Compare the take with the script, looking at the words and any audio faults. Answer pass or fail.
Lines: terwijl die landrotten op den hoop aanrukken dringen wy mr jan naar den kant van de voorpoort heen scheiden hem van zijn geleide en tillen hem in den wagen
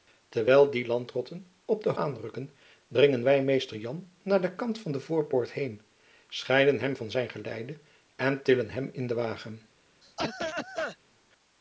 fail